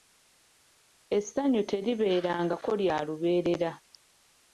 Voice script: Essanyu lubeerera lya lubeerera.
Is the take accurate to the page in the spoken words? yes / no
no